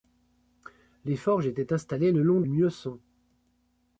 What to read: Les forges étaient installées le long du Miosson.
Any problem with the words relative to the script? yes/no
yes